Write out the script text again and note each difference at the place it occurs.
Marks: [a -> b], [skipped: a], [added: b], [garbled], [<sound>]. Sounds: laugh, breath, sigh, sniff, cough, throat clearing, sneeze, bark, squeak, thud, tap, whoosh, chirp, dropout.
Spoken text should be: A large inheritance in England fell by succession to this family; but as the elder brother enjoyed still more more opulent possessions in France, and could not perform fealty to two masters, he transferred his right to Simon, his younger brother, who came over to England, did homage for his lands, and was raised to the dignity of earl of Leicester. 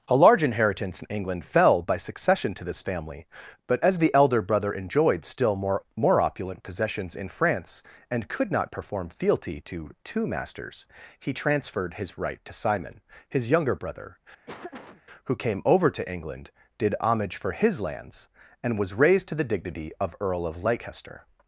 A large inheritance in England fell by succession to this family; but as the elder brother enjoyed still more more opulent possessions in France, and could not perform fealty to two masters, he transferred his right to Simon, his younger brother, [laugh] who came over to England, did homage for his lands, and was raised to the dignity of earl of Leicester.